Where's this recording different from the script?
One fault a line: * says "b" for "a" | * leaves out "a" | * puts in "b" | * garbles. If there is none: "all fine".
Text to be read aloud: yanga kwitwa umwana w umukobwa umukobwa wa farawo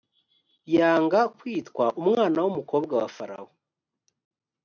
* leaves out "umukobwa"